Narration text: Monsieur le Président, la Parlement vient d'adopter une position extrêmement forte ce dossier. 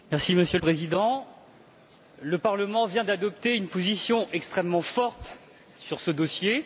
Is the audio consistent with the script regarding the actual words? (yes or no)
no